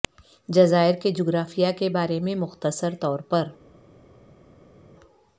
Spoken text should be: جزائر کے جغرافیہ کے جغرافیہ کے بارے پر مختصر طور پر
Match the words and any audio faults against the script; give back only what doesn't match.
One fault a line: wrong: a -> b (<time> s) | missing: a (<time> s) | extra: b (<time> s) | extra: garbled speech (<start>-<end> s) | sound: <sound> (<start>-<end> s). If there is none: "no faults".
missing: جغرافیہ کے (1.9 s)
wrong: پر -> میں (2.2 s)